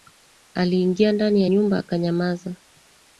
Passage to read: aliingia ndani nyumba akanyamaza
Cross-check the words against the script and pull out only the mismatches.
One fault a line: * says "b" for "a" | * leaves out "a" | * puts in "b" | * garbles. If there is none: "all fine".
* puts in "ya"